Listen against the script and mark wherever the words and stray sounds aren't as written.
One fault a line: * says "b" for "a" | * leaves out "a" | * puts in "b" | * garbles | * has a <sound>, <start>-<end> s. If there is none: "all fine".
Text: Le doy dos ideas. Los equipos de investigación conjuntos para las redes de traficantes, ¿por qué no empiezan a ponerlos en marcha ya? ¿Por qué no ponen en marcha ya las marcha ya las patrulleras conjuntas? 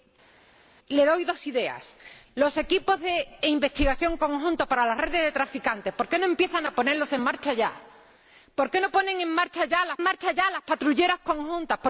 all fine